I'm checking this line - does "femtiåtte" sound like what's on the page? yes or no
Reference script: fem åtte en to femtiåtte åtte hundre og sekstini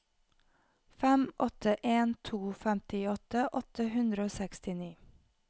yes